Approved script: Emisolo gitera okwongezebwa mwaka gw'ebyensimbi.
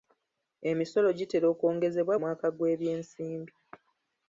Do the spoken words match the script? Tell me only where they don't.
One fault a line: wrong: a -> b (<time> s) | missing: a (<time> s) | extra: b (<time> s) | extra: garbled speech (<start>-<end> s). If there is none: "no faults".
no faults